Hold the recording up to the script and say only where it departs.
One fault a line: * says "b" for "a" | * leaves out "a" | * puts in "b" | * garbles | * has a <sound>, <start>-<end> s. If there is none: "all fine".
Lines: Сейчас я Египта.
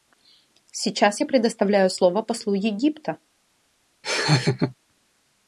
* puts in "предоставляю слово послу"
* has a laugh, 4.0-4.7 s